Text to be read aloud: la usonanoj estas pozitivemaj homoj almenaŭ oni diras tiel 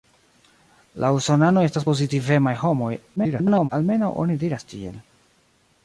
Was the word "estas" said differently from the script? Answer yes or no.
no